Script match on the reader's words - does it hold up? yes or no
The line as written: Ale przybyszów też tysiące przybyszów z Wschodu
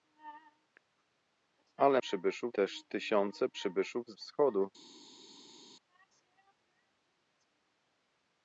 yes